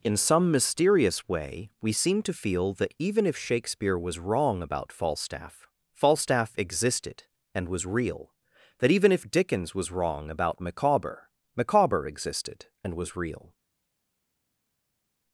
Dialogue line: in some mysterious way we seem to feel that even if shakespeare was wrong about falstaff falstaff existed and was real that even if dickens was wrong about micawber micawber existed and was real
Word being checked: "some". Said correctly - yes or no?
yes